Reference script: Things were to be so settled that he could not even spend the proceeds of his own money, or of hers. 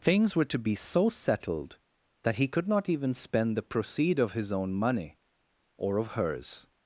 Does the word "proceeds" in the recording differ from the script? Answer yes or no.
yes